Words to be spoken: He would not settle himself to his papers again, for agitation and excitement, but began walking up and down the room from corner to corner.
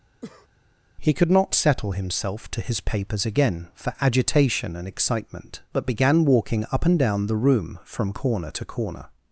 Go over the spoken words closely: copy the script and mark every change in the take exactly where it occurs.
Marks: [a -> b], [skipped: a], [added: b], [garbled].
He [would -> could] not settle himself to his papers again, for agitation and excitement, but began walking up and down the room from corner to corner.